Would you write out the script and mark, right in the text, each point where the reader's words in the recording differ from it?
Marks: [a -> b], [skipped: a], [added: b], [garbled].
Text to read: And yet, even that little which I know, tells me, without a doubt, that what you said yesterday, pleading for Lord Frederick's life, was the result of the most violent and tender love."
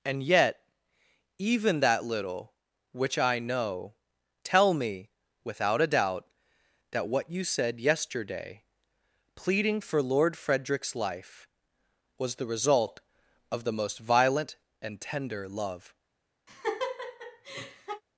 And yet, even that little which I know, [tells -> tell] me, without a doubt, that what you said yesterday, pleading for Lord Frederick's life, was the result of the most violent and tender love."